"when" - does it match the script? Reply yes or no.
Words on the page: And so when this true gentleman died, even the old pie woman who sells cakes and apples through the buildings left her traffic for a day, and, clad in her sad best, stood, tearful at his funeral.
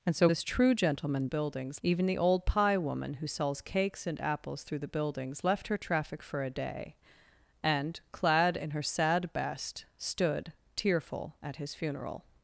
no